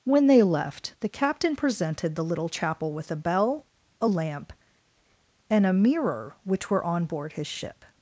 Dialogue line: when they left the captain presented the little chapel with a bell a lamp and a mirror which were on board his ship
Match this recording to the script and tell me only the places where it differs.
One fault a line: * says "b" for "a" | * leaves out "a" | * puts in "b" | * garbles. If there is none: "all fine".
all fine